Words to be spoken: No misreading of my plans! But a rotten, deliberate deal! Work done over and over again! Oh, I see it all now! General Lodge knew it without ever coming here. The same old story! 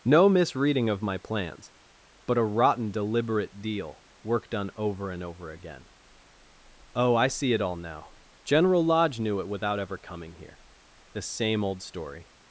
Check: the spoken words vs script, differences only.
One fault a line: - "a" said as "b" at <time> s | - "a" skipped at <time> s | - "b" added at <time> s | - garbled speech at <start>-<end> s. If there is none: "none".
none